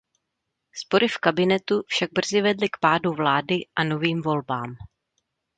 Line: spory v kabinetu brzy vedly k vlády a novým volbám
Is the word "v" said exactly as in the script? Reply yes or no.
yes